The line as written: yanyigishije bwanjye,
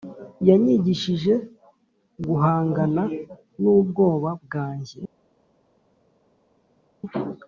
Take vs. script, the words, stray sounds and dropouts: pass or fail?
fail